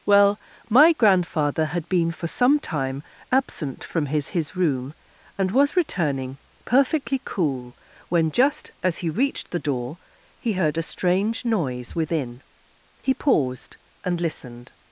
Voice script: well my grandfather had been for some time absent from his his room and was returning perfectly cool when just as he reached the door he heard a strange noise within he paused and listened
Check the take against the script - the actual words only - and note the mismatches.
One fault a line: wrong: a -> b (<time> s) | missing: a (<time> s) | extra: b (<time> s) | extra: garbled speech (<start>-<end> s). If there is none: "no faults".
no faults